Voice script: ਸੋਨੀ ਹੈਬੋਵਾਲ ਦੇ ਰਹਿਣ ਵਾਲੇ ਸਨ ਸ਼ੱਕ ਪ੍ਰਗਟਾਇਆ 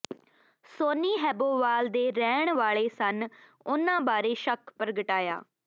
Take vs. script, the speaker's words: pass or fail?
fail